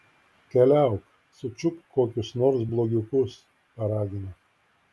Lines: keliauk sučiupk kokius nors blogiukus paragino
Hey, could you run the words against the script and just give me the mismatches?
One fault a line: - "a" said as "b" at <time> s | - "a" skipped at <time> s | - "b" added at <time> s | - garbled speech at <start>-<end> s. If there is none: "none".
none